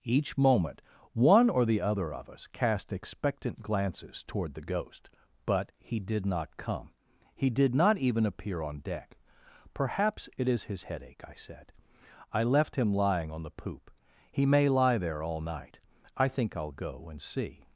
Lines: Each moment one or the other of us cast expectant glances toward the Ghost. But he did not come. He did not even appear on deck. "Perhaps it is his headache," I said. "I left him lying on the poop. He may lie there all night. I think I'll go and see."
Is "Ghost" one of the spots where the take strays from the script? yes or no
no